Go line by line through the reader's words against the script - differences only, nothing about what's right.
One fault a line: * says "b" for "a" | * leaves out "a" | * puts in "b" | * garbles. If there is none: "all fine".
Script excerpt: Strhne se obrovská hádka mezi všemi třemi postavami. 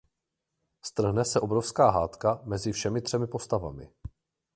all fine